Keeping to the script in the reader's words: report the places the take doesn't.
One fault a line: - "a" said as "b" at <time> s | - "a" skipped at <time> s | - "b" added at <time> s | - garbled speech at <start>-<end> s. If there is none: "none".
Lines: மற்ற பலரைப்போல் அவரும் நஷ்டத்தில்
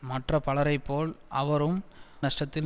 none